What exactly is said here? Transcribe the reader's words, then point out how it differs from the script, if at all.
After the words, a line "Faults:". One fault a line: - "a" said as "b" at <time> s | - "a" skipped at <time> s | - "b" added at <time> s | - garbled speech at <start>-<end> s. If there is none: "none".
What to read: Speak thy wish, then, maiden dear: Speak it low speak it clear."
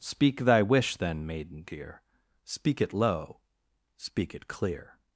Speak thy wish, then, maiden dear: Speak it low speak it clear."
Faults:
none